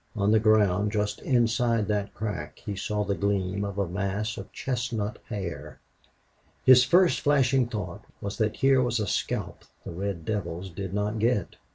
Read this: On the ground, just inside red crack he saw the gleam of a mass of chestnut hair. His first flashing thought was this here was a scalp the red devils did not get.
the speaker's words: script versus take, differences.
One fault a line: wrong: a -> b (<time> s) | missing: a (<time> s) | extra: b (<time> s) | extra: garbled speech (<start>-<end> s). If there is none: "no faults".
wrong: red -> that (1.9 s)
wrong: this -> that (8.4 s)